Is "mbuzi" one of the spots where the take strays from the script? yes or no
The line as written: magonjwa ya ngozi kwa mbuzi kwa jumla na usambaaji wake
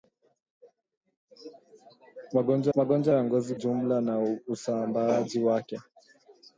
yes